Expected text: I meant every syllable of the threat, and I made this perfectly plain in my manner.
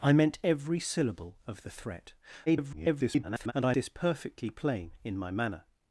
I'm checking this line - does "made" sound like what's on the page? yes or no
no